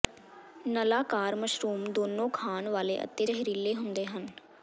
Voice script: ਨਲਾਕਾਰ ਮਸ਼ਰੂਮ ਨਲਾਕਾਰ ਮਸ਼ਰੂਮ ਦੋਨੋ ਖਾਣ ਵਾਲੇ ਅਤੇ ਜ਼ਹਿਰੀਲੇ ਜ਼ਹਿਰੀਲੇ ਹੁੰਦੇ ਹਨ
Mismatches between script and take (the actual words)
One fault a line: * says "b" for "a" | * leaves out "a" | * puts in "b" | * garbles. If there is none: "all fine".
* leaves out "ਨਲਾਕਾਰ ਮਸ਼ਰੂਮ"
* leaves out "ਜ਼ਹਿਰੀਲੇ"